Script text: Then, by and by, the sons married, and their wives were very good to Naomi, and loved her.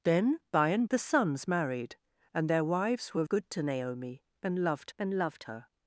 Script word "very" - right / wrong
wrong